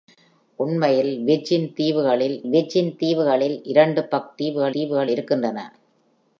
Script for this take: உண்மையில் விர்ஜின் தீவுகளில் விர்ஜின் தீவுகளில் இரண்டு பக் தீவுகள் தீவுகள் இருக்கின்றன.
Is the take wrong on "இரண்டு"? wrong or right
right